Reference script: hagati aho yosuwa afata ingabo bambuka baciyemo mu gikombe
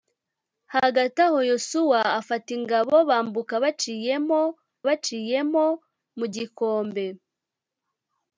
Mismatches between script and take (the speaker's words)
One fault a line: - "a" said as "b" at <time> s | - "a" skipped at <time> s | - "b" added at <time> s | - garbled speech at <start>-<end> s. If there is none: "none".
- "baciyemo" added at 4.9 s